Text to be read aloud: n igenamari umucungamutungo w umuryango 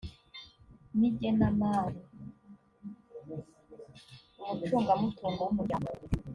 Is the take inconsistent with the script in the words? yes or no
no